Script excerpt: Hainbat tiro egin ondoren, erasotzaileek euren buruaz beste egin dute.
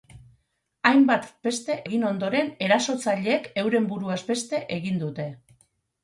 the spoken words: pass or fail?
fail